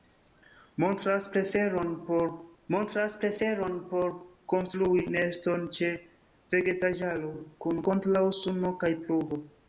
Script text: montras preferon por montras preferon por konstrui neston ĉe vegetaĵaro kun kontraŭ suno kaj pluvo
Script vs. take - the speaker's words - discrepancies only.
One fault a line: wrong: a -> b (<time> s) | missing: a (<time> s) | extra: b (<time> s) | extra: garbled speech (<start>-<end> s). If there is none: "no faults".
no faults